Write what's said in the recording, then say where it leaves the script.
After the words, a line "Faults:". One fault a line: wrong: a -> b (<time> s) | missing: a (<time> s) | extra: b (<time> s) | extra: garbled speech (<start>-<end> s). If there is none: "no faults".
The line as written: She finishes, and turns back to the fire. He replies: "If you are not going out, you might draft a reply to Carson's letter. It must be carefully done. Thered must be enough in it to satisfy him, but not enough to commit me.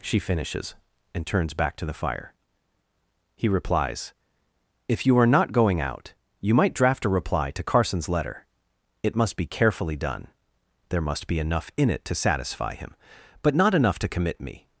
She finishes, and turns back to the fire. He replies: "If you are not going out, you might draft a reply to Carson's letter. It must be carefully done. There must be enough in it to satisfy him, but not enough to commit me.
Faults:
wrong: Thered -> There (10.9 s)